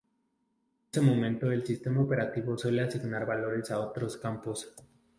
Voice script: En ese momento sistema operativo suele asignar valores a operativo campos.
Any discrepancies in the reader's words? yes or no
yes